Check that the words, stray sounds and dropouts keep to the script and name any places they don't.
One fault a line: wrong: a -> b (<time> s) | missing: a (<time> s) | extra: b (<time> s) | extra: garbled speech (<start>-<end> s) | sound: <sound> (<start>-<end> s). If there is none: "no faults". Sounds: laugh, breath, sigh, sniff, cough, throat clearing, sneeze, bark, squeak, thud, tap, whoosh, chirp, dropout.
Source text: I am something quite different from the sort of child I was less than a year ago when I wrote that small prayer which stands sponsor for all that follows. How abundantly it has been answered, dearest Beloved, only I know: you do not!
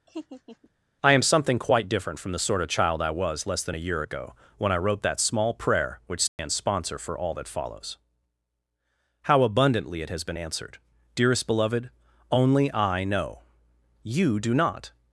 sound: laugh (0.1-0.7 s)
sound: dropout (6.3-6.4 s)